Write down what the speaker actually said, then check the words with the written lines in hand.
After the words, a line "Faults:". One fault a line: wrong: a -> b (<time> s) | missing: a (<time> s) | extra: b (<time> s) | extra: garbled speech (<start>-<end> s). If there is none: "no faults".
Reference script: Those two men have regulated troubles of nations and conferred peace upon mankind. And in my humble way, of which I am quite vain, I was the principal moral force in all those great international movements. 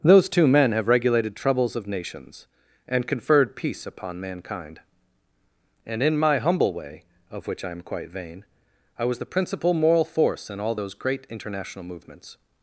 Those two men have regulated troubles of nations and conferred peace upon mankind. And in my humble way, of which I am quite vain, I was the principal moral force in all those great international movements.
Faults:
no faults